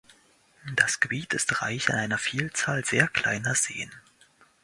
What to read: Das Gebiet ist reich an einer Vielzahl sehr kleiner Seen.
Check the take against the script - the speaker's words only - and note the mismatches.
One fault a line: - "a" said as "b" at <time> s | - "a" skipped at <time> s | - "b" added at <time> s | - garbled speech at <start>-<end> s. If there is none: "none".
none